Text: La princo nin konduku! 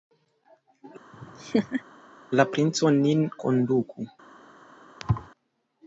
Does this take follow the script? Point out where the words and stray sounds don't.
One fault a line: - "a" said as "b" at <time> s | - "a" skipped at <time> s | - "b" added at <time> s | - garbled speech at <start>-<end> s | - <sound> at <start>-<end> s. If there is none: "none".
- laugh at 1.1-1.8 s
- thud at 5.0-5.3 s